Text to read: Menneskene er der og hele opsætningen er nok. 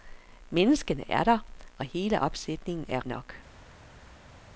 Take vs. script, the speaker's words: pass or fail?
pass